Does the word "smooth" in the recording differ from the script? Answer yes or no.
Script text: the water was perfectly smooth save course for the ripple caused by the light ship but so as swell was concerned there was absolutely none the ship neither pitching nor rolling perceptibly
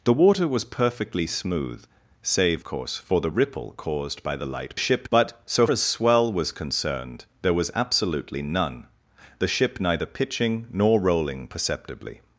no